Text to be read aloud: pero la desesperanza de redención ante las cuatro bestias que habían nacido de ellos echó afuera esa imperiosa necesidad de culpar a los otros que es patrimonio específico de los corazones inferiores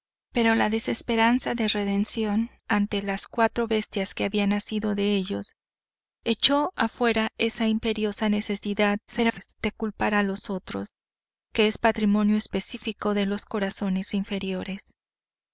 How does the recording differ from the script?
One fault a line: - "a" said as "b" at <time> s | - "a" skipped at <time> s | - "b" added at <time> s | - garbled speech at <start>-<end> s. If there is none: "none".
- garbled speech at 9.1-9.5 s